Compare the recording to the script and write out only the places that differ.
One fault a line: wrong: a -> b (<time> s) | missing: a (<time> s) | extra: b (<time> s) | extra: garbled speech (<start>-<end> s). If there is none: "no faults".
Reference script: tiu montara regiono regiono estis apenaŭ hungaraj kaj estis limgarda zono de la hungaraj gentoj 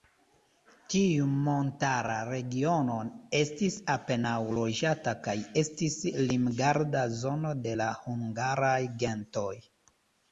missing: regiono (3.0 s)
wrong: hungaraj -> loĝata (4.6 s)